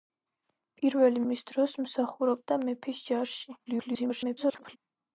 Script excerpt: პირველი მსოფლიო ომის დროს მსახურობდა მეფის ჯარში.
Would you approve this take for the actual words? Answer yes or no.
no